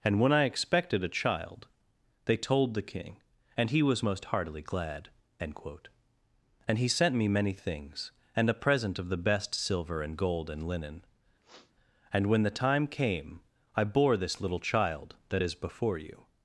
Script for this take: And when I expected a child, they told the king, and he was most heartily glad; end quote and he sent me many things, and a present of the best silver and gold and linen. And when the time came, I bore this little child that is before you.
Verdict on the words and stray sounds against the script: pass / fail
fail